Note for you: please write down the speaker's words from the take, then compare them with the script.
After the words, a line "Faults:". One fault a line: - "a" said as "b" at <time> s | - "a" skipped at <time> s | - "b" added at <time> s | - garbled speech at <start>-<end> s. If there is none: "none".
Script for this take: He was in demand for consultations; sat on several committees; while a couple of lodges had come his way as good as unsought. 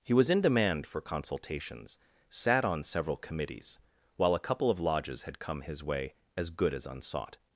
He was in demand for consultations; sat on several committees; while a couple of lodges had come his way as good as unsought.
Faults:
none